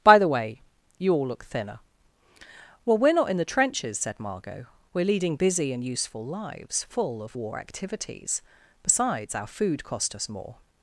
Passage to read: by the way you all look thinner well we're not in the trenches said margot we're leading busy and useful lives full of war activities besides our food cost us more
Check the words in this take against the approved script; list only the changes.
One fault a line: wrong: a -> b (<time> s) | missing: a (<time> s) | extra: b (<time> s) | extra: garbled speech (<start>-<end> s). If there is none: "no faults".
no faults